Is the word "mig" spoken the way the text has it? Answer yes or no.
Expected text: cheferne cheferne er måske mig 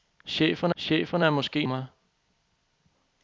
yes